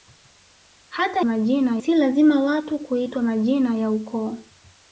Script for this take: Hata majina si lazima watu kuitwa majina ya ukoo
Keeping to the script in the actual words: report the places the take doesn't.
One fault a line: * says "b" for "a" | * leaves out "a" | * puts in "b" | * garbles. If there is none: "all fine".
all fine